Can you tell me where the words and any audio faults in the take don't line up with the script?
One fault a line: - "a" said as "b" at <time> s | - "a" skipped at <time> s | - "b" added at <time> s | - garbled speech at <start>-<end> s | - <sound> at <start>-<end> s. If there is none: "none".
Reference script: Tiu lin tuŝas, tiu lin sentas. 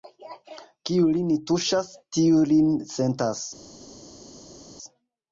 - "Tiu" said as "Kiu" at 0.9 s